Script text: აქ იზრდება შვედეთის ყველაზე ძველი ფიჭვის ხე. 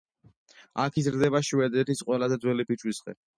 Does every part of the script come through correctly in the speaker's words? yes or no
yes